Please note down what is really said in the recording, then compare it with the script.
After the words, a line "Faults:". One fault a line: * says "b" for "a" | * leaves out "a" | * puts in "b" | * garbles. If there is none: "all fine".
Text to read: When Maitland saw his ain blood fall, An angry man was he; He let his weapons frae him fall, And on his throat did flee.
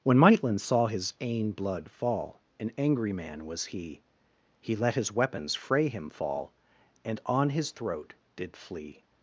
When Maitland saw his ain blood fall, An angry man was he; He let his weapons frae him fall, And on his throat did flee.
Faults:
all fine